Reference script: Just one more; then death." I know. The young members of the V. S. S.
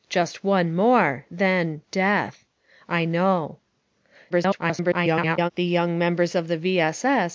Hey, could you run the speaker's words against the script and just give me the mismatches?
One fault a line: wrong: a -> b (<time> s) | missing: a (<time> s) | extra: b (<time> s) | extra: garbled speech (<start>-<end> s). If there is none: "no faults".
extra: garbled speech (4.3-5.5 s)